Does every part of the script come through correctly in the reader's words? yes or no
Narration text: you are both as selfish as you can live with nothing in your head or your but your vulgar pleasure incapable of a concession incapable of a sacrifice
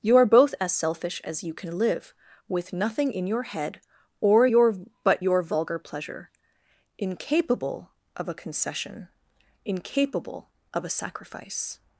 yes